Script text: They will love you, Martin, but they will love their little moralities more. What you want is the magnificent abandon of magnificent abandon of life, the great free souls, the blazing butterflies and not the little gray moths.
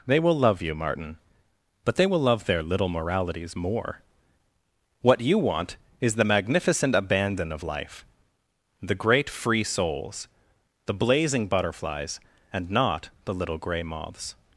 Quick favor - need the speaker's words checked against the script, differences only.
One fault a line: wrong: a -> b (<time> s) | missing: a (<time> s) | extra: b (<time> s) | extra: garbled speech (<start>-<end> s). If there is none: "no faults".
missing: magnificent abandon of (7.6 s)